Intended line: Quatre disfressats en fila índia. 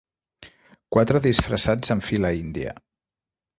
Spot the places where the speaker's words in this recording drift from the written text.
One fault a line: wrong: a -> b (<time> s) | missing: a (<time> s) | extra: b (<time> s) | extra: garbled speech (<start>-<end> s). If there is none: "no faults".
no faults